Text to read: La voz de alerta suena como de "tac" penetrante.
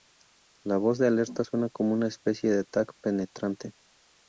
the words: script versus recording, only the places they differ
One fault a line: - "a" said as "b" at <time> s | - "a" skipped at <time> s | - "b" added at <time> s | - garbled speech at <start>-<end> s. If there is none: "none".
- "una especie" added at 1.9 s